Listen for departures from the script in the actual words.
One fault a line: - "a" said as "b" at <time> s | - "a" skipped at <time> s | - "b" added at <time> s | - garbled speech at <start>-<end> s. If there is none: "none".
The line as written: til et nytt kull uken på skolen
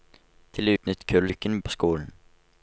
none